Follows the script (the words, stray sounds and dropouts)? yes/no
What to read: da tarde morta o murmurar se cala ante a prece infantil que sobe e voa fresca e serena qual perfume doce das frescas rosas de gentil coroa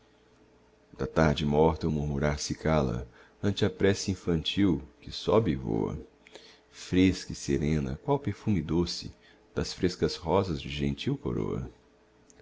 yes